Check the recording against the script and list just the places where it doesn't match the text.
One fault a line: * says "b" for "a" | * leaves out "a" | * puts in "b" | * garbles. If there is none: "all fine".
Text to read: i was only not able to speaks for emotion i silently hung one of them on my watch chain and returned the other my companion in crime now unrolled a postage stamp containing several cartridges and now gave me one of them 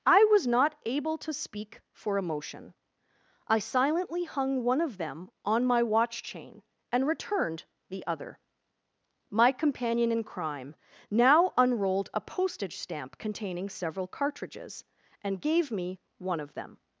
* leaves out "only"
* says "speak" for "speaks"
* leaves out "now"